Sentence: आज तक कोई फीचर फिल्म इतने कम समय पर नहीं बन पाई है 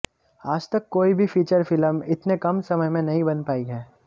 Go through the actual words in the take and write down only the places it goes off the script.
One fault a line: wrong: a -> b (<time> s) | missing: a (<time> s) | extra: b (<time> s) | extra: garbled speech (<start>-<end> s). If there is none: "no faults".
extra: भी (1.1 s)
wrong: पर -> में (2.9 s)